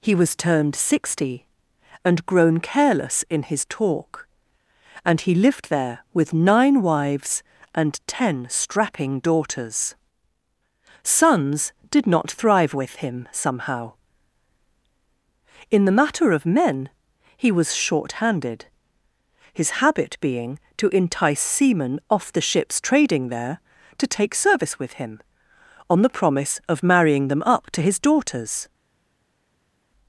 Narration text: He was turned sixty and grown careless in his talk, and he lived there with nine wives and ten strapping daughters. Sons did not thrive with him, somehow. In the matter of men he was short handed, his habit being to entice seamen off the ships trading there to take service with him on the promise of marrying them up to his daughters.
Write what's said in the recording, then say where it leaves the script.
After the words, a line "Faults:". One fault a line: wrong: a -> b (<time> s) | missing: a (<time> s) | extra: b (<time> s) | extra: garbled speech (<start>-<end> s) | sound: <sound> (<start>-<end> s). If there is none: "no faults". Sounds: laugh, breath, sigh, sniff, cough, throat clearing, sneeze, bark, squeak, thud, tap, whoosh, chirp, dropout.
He was turned sixty and grown careless in his talk, and he lived there with nine wives and ten strapping daughters. Sons did not thrive with him, somehow. In the matter of men he was short handed, his habit being to entice seamen off the ships trading there to take service with him on the promise of marrying them up to his daughters.
Faults:
no faults